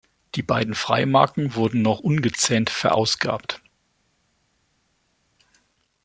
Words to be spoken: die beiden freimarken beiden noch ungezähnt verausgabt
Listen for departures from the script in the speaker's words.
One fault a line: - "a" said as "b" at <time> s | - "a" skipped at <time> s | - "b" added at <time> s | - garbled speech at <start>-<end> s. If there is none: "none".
- "beiden" said as "wurden" at 1.5 s